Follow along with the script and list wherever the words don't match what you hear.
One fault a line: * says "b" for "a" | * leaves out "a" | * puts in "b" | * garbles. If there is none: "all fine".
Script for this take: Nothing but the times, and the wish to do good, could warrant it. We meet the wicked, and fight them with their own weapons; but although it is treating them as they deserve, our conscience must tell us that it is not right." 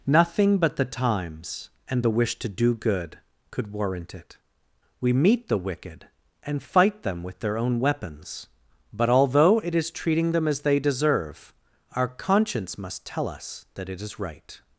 * leaves out "not"